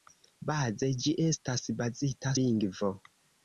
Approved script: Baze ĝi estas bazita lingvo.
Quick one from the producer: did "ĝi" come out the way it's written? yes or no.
yes